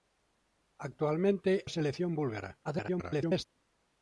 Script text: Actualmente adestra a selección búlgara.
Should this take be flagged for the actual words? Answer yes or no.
yes